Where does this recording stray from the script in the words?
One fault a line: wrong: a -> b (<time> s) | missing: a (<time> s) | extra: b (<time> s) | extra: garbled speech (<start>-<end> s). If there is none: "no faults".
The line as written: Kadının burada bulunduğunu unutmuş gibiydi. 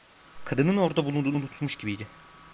wrong: burada -> orada (0.8 s)